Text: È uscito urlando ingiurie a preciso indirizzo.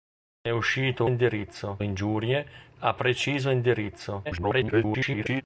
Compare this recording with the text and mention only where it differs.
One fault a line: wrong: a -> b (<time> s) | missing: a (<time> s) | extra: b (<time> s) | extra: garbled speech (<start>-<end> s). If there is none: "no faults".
wrong: urlando -> indirizzo (1.0 s)
extra: garbled speech (4.2-5.4 s)